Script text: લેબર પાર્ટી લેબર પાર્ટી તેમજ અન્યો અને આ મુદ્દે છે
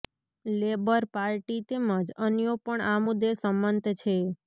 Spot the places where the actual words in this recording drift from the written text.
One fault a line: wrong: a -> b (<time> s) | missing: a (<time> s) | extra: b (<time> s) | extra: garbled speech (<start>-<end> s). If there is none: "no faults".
missing: લેબર પાર્ટી (1.6 s)
wrong: અને -> પણ (2.6 s)
extra: સંમત (3.4 s)